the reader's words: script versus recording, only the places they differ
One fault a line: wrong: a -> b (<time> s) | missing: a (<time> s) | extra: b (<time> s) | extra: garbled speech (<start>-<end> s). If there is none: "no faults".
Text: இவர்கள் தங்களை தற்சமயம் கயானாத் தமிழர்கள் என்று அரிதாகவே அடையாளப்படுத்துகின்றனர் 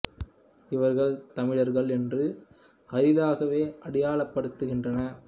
missing: தங்களை தற்சமயம் கயானாத் (1.1 s)